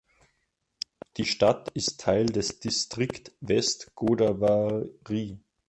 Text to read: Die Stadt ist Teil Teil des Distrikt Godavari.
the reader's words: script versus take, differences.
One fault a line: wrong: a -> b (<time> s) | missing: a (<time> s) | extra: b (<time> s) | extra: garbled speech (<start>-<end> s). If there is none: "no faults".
missing: Teil (2.2 s)
extra: West (3.4 s)